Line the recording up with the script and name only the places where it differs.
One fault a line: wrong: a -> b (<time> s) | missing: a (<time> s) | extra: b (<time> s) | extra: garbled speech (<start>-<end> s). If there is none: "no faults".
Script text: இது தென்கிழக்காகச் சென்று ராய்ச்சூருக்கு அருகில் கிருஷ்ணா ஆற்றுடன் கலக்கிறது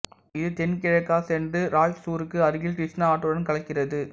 no faults